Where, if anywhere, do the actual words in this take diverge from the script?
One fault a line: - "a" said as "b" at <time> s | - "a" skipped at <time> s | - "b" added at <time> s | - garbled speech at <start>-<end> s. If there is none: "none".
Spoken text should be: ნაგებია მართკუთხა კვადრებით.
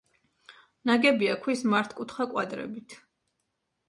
- "ქვის" added at 1.4 s